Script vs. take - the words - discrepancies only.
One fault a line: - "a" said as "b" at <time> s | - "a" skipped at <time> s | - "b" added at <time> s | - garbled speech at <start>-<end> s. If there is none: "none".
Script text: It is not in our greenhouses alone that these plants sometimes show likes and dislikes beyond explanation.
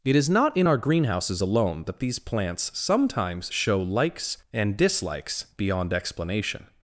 none